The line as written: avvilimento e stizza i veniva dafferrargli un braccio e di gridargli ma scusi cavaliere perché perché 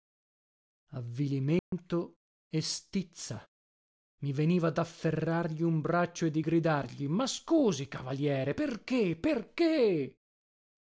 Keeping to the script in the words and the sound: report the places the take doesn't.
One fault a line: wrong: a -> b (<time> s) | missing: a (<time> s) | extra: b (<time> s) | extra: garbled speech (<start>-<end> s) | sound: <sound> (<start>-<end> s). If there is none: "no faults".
sound: dropout (1.6-1.7 s)